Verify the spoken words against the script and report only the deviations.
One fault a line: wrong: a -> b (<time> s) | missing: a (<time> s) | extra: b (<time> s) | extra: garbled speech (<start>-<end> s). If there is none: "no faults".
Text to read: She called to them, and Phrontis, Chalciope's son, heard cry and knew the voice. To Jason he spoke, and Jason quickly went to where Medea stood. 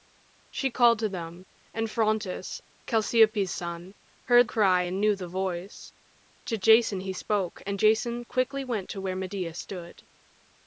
no faults